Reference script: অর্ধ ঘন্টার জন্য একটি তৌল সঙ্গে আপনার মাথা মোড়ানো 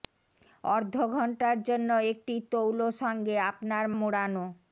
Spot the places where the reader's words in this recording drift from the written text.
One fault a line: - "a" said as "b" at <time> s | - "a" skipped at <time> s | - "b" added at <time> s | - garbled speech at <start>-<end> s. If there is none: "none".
- "মাথা" skipped at 3.9 s